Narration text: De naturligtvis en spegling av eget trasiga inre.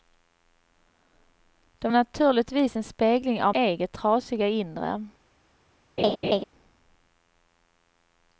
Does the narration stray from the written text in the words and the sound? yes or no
yes